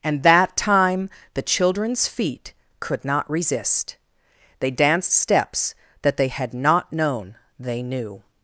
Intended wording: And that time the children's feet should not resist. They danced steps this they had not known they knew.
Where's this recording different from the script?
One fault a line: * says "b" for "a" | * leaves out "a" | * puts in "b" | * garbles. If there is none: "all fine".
* says "could" for "should"
* says "that" for "this"